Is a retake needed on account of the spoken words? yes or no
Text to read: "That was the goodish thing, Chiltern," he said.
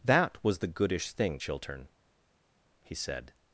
no